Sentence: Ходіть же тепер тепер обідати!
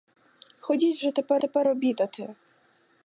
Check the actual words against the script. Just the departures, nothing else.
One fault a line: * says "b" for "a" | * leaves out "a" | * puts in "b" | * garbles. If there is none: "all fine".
all fine